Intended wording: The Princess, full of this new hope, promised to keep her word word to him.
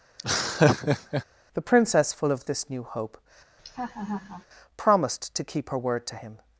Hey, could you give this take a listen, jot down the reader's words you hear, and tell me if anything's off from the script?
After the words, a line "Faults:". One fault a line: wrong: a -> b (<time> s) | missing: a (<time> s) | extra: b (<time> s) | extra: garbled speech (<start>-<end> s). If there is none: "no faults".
The Princess, full of this new hope, promised to keep her word to him.
Faults:
missing: word (6.1 s)